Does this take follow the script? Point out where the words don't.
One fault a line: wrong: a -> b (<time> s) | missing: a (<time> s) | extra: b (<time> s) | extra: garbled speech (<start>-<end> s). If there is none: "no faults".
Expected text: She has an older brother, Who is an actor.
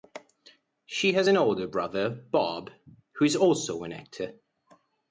extra: Bob (2.1 s)
extra: also (3.4 s)